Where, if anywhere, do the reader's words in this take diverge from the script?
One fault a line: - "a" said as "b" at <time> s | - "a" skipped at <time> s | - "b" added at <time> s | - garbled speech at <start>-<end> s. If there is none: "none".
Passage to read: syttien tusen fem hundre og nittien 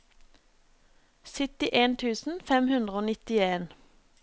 none